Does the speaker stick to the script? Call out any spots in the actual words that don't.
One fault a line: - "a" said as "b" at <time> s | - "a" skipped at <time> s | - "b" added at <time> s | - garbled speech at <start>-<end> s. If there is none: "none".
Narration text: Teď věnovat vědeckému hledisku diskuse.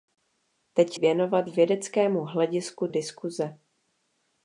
none